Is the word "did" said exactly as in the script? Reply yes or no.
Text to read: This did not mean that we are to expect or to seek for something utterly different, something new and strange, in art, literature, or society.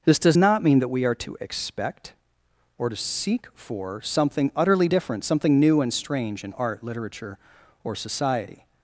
no